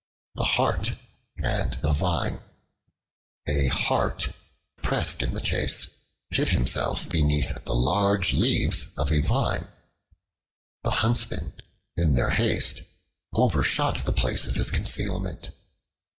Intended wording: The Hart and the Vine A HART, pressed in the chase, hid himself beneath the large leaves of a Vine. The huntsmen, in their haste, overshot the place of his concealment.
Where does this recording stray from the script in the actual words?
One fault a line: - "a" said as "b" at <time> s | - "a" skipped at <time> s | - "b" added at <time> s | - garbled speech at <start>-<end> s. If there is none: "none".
none